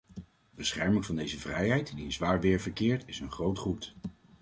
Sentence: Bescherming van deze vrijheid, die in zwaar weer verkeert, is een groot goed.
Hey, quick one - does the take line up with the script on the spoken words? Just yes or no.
yes